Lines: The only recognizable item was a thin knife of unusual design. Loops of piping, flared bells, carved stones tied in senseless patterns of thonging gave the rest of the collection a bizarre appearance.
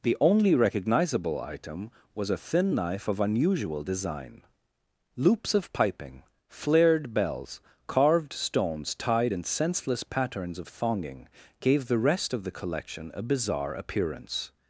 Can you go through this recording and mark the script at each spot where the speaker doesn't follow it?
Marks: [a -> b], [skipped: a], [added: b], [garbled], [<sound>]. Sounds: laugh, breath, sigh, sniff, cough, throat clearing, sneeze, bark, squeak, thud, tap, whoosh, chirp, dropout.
The only recognizable item was a thin knife of unusual design. Loops of piping, flared bells, carved stones tied in senseless patterns of thonging gave the rest of the collection a bizarre appearance.